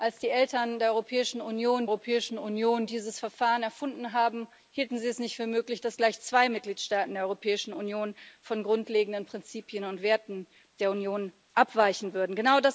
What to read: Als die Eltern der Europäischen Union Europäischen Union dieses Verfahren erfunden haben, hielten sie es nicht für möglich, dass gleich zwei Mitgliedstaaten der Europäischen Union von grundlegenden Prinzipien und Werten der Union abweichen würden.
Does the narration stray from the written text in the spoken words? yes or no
no